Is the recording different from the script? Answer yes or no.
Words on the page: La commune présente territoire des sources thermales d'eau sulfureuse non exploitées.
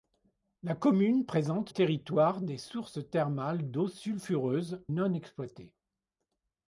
no